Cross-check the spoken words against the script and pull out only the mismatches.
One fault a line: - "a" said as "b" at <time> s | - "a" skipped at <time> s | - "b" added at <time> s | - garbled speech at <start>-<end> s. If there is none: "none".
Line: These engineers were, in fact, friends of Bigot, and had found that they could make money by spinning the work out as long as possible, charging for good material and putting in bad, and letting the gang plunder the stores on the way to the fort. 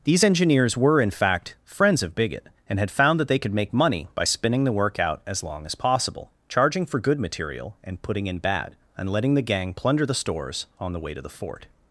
none